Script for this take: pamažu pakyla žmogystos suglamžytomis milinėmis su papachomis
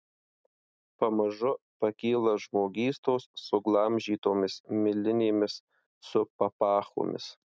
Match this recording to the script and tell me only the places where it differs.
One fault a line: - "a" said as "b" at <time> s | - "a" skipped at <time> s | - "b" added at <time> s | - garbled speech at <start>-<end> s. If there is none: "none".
none